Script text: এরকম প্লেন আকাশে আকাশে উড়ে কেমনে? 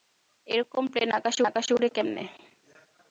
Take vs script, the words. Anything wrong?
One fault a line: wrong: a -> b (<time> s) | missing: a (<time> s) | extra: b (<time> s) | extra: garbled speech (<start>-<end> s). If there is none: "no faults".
no faults